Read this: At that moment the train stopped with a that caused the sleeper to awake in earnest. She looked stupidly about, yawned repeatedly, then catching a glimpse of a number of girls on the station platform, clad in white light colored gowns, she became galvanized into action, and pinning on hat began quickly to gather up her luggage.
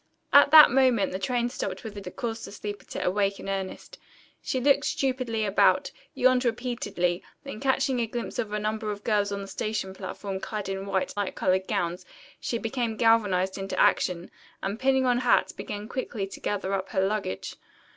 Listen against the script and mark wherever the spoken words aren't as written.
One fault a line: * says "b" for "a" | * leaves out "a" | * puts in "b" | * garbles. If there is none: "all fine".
all fine